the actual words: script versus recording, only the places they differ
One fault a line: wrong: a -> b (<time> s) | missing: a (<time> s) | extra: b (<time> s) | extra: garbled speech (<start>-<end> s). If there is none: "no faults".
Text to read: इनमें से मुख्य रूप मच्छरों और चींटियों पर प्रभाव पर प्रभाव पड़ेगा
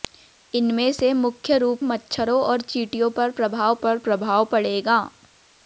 no faults